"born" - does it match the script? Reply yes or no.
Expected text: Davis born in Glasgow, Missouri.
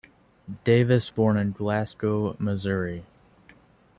yes